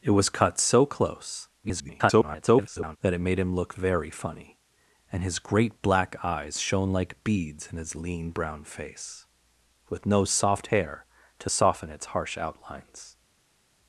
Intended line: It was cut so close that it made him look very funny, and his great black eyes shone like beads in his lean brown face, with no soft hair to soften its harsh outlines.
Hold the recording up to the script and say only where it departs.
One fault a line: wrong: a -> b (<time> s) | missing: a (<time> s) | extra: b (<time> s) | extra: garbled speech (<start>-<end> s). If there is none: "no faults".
extra: garbled speech (1.6-3.0 s)